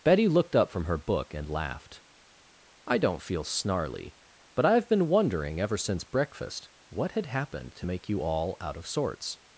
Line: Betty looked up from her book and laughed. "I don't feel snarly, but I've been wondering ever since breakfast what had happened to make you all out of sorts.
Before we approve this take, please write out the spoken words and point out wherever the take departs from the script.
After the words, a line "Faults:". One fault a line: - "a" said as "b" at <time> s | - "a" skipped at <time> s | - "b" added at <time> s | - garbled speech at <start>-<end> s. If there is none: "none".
Betty looked up from her book and laughed. "I don't feel snarly, but I've been wondering ever since breakfast what had happened to make you all out of sorts.
Faults:
none